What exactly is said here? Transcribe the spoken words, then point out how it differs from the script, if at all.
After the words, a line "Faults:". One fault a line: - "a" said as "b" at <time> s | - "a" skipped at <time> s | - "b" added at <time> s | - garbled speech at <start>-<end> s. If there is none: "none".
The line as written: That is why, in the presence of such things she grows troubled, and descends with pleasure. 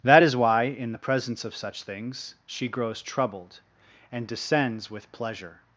That is why, in the presence of such things she grows troubled, and descends with pleasure.
Faults:
none